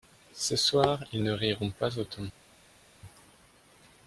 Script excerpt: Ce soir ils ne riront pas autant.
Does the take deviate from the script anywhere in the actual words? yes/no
no